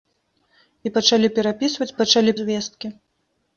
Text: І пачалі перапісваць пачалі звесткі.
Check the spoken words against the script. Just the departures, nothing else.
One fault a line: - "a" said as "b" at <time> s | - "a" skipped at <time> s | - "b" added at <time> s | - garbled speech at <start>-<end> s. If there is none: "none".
none